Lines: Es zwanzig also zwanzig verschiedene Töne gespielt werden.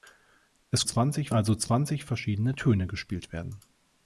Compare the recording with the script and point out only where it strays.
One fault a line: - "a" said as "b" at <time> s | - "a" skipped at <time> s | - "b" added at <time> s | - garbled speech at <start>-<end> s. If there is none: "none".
none